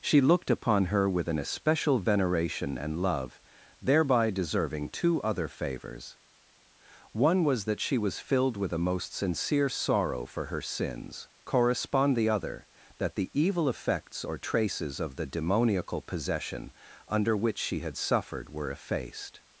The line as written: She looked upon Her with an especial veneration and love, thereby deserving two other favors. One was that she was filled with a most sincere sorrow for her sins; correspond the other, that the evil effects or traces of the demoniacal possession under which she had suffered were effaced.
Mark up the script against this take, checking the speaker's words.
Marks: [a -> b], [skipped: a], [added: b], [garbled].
She looked upon Her with an especial veneration and love, thereby deserving two other favors. One was that she was filled with a most sincere sorrow for her sins; correspond the other, that the evil effects or traces of the demoniacal possession under which she had suffered were effaced.